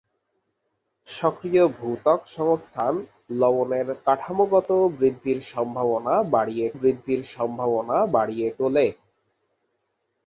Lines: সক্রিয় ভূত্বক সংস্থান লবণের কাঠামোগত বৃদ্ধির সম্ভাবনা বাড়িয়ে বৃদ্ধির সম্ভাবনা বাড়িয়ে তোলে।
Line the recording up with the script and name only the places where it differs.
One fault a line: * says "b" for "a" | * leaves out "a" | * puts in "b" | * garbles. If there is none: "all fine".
all fine